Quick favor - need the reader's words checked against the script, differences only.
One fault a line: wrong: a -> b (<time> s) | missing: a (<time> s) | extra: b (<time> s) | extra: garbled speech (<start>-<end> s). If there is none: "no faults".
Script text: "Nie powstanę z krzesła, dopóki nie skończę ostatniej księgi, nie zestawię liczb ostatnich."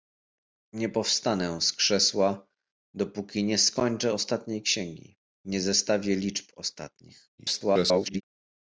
extra: garbled speech (7.4-8.2 s)